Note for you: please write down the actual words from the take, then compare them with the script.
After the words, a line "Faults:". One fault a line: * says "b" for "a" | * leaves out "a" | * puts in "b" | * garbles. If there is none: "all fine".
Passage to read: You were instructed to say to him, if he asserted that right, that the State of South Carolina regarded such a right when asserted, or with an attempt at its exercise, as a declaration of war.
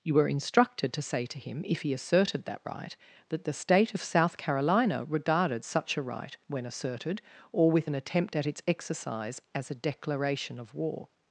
You were instructed to say to him, if he asserted that right, that the State of South Carolina regarded such a right when asserted, or with an attempt at its exercise, as a declaration of war.
Faults:
all fine